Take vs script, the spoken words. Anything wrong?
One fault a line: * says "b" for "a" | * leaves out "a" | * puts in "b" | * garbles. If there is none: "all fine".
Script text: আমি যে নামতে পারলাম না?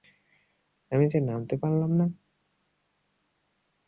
all fine